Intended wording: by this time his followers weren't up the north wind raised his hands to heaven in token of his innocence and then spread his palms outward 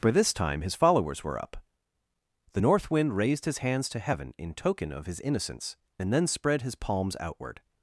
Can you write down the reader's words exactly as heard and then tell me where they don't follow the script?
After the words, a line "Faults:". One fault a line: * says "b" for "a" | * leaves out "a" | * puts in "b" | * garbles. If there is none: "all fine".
by this time his followers were up the north wind raised his hands to heaven in token of his innocence and then spread his palms outward
Faults:
* says "were" for "weren't"